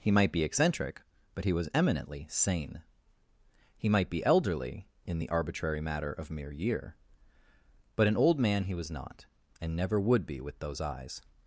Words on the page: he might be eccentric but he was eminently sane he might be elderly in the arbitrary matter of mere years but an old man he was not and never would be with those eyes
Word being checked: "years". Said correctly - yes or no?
no